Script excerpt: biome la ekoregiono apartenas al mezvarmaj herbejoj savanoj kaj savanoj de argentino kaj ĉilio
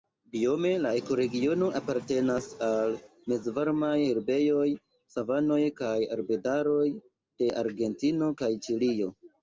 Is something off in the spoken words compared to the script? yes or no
yes